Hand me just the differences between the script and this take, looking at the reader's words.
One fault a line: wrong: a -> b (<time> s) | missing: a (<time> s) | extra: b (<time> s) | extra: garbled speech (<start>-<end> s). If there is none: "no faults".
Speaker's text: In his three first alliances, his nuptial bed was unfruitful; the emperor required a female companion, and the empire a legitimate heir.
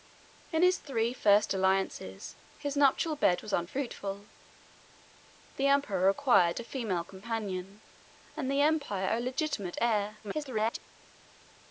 extra: garbled speech (10.2-10.8 s)